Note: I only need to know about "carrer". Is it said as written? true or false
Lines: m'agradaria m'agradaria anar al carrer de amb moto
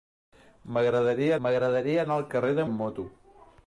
true